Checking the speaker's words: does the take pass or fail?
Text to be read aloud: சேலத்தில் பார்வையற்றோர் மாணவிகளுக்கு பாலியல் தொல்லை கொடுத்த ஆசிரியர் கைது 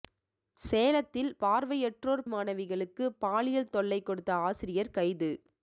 pass